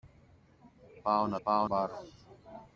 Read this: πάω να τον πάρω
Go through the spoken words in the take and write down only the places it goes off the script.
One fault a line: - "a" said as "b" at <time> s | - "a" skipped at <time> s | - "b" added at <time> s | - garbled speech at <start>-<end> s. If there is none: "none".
- "τον" said as "πάω" at 1.4 s